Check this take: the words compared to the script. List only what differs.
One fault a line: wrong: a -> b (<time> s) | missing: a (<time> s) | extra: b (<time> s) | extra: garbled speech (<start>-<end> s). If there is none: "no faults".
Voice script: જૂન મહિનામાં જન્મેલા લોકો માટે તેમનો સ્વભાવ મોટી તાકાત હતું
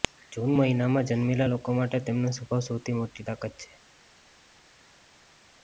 extra: સૌથી (2.7 s)
wrong: હતું -> છે (3.6 s)